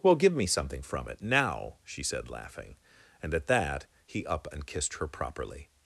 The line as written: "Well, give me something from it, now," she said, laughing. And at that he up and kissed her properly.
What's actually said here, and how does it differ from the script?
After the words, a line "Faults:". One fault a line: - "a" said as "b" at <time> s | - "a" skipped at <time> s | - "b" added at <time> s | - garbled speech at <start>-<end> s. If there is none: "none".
"Well, give me something from it, now," she said, laughing. And at that he up and kissed her properly.
Faults:
none